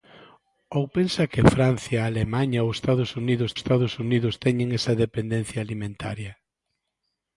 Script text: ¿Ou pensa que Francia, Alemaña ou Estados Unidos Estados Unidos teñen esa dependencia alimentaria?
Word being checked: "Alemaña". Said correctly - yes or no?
yes